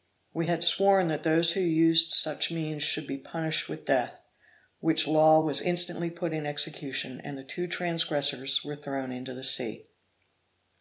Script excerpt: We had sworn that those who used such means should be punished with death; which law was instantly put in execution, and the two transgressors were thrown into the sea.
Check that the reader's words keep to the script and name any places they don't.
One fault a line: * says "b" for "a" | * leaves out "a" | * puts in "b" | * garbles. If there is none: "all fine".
all fine